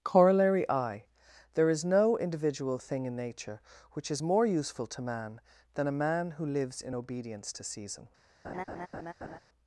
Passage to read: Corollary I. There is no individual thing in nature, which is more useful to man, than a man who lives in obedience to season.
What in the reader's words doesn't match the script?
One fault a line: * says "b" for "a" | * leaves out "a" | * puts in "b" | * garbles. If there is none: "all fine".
all fine